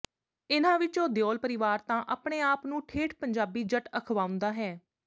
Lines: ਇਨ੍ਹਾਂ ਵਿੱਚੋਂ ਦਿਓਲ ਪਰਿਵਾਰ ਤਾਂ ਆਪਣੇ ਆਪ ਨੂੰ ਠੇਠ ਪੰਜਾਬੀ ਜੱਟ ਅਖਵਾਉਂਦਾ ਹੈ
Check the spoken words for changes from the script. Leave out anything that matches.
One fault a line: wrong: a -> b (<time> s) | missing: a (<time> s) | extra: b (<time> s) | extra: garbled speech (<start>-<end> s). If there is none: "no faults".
no faults